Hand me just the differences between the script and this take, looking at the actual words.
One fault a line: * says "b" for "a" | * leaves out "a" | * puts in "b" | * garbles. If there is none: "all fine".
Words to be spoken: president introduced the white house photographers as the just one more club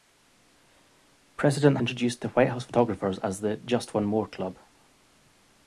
all fine